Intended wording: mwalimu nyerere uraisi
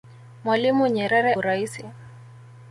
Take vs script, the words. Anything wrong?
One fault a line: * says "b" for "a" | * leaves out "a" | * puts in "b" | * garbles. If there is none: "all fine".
all fine